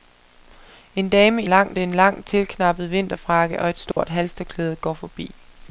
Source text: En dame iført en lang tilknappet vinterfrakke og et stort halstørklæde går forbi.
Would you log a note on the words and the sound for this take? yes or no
yes